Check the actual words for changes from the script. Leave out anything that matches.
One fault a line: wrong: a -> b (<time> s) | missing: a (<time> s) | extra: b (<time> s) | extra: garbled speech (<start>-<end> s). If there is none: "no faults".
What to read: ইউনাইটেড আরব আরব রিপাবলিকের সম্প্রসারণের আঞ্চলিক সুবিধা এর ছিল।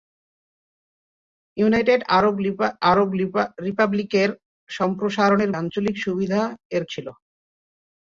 no faults